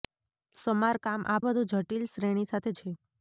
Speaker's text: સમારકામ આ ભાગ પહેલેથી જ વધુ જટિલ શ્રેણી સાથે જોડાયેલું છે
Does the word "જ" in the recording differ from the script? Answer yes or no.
yes